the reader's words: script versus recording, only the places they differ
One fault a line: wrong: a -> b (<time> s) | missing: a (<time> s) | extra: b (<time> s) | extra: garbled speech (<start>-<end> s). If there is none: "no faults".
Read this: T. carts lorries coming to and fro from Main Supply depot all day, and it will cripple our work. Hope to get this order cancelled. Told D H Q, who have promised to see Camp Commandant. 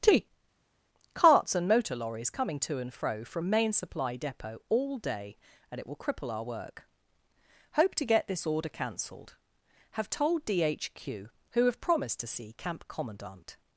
extra: and motor (1.5 s)
extra: Have (9.9 s)